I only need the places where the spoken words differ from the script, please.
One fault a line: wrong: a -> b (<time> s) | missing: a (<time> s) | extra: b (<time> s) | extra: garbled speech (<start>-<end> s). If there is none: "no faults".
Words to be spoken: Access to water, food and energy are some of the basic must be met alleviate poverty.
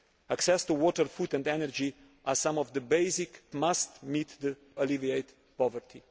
no faults